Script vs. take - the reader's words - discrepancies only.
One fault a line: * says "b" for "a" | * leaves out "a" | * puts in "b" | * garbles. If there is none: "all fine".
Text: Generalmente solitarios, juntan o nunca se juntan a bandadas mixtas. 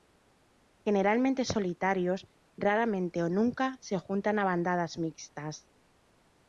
* says "raramente" for "juntan"